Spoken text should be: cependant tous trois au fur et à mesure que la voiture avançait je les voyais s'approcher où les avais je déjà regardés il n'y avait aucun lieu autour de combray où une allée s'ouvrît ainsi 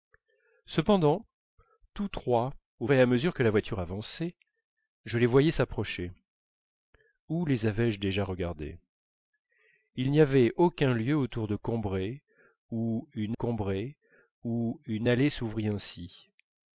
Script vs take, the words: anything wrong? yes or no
yes